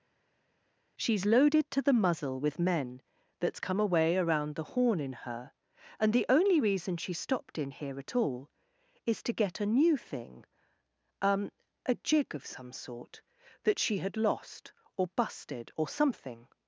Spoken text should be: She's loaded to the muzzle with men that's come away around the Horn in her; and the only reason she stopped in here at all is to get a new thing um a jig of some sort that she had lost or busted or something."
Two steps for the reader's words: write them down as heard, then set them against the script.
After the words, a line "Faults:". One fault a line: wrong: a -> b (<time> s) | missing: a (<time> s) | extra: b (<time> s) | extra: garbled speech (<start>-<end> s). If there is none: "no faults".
She's loaded to the muzzle with men that's come away around the Horn in her; and the only reason she stopped in here at all is to get a new thing um a jig of some sort that she had lost or busted or something."
Faults:
no faults